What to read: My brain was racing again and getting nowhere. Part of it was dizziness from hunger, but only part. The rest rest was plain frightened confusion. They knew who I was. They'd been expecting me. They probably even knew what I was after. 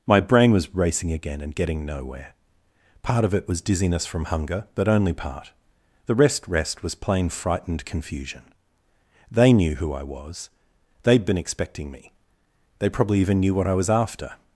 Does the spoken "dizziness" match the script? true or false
true